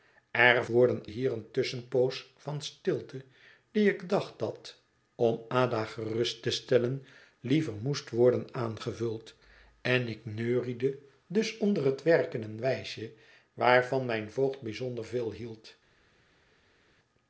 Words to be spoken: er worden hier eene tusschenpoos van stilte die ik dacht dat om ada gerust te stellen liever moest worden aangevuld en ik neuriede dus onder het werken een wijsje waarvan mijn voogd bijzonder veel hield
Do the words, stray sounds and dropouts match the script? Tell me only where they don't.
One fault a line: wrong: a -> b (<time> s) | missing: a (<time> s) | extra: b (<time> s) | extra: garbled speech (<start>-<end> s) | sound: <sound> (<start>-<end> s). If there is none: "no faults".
no faults